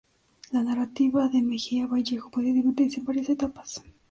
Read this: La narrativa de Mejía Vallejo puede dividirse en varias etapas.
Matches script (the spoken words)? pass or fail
pass